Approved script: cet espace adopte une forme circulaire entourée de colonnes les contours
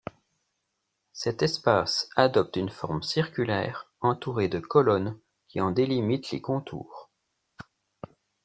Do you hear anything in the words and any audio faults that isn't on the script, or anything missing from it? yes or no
yes